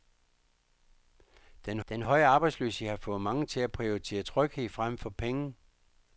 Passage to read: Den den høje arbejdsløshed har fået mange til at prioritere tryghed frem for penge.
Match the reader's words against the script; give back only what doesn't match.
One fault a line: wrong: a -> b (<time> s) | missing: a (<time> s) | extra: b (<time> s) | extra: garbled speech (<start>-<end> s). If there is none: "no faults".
no faults